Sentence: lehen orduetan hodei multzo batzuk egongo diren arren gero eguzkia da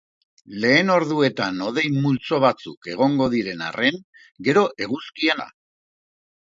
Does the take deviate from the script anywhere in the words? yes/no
no